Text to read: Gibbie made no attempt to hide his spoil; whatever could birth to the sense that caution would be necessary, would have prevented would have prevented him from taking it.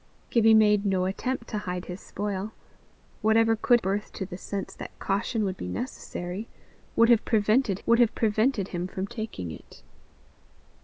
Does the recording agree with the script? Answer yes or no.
yes